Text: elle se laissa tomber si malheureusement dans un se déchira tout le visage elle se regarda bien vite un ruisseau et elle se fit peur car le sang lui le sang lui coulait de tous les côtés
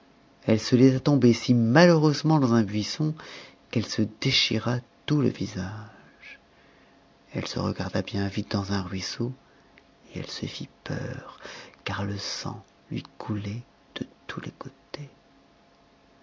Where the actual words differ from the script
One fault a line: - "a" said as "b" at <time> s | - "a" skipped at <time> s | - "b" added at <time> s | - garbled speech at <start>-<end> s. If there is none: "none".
- "buisson qu'elle" added at 2.6 s
- "dans" added at 8.5 s
- "le sang lui" skipped at 13.0 s